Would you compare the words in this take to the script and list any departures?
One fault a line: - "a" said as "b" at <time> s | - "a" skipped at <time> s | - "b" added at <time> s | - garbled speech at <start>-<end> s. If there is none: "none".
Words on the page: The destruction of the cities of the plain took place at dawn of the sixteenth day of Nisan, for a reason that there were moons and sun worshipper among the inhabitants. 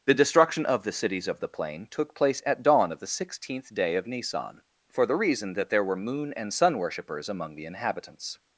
- "a" said as "the" at 5.0 s
- "moons" said as "moon" at 6.0 s
- "worshipper" said as "worshippers" at 6.8 s